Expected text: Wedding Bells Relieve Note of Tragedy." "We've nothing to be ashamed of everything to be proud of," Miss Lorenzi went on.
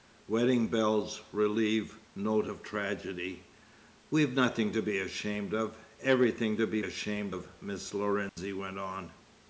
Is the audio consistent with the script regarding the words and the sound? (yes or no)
no